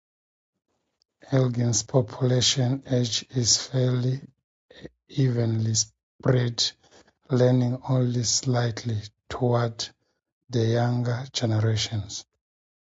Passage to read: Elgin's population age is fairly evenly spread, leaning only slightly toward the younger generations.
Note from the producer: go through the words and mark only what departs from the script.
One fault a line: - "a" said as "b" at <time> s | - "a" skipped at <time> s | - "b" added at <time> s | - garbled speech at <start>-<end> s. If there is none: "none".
none